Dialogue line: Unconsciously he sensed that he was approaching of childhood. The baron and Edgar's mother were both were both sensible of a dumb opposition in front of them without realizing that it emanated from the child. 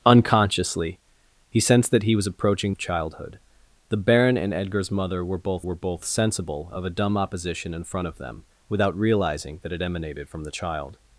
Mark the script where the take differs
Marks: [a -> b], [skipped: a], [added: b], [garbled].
Unconsciously he sensed that he was approaching of childhood. The baron and Edgar's mother were both were both sensible of a dumb opposition in front of them without realizing that it emanated from the child.